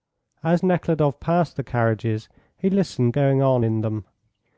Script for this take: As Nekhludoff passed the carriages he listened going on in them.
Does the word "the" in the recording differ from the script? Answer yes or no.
no